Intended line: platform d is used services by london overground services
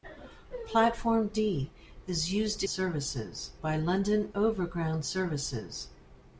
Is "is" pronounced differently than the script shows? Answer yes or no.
no